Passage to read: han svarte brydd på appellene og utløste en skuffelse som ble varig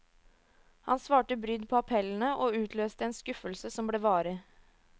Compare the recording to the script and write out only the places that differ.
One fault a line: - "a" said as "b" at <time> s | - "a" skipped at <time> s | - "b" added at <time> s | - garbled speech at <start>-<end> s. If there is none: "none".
none